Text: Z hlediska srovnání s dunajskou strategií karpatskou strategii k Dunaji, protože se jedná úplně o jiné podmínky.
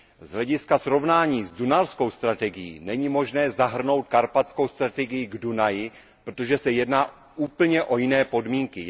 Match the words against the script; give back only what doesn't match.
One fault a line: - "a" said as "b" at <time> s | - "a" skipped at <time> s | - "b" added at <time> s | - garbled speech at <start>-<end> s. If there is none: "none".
- "není možné zahrnout" added at 2.8 s